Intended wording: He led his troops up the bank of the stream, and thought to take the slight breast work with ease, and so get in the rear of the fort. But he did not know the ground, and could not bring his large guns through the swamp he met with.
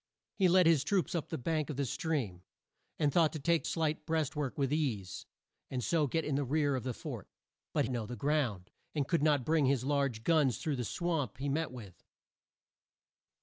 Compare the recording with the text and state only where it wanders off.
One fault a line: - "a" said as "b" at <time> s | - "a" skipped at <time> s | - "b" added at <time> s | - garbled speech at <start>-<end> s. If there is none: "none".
- "the" skipped at 3.6 s
- "he did not" skipped at 7.9 s